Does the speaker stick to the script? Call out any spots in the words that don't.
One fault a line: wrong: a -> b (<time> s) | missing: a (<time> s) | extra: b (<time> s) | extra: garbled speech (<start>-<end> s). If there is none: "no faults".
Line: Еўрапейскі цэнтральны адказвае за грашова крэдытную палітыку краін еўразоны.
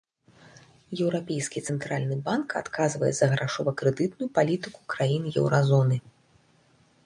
extra: банк (2.3 s)